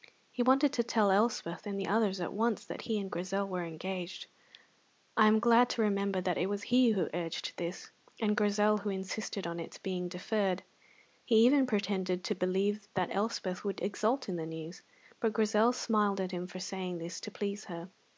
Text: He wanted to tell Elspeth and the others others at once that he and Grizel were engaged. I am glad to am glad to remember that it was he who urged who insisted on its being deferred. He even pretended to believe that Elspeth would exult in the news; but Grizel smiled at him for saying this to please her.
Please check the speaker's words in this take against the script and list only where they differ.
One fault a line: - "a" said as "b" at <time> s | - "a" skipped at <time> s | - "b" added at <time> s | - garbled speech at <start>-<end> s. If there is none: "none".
- "others" skipped at 2.2 s
- "am glad to" skipped at 5.8 s
- "this and Grizel" added at 7.6 s